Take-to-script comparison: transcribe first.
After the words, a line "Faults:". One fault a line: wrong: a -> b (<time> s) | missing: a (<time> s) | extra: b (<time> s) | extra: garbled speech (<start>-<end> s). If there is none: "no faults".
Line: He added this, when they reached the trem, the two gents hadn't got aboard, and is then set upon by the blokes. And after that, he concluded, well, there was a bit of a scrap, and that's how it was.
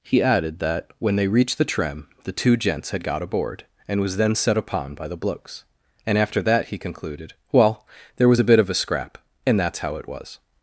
He added that, when they reached the trem, the two gents had got aboard, and was then set upon by the blokes. And after that, he concluded, well, there was a bit of a scrap, and that's how it was.
Faults:
wrong: this -> that (0.6 s)
wrong: hadn't -> had (2.9 s)
wrong: is -> was (4.0 s)